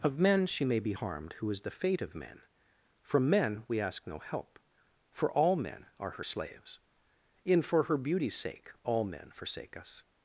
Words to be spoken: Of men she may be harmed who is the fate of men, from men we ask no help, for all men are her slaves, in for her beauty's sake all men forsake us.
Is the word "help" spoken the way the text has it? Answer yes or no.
yes